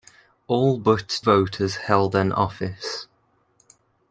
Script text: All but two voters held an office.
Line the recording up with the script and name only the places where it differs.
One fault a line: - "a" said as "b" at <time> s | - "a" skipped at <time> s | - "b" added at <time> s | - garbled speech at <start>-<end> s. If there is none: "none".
- "two" skipped at 1.2 s